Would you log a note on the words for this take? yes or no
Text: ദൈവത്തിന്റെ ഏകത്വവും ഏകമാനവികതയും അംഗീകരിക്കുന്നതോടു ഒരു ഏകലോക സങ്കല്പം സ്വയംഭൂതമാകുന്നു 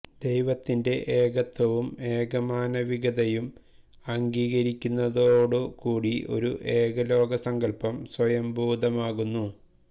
yes